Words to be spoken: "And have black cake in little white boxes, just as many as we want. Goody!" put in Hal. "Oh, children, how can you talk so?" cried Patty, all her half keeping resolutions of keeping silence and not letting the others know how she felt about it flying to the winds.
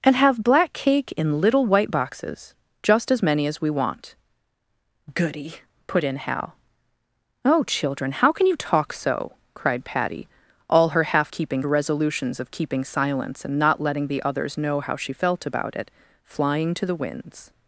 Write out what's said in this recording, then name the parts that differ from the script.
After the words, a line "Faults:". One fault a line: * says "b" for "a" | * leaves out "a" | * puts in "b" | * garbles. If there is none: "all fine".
"And have black cake in little white boxes, just as many as we want. Goody!" put in Hal. "Oh, children, how can you talk so?" cried Patty, all her half keeping resolutions of keeping silence and not letting the others know how she felt about it flying to the winds.
Faults:
all fine